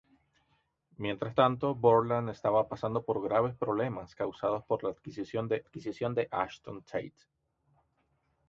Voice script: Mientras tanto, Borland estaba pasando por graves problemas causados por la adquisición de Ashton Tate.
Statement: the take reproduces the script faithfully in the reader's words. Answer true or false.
false